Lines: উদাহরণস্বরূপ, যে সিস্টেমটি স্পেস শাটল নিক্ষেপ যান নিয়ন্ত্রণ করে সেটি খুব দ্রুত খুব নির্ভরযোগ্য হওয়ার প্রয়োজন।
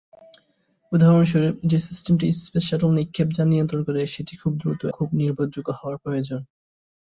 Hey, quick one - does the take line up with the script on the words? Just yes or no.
yes